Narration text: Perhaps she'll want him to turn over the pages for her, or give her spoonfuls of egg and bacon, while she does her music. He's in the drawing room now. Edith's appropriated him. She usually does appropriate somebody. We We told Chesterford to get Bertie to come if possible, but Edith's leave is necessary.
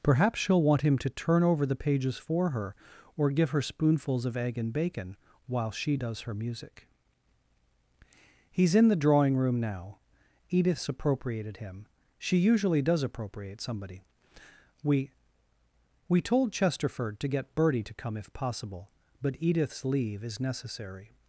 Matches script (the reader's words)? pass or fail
pass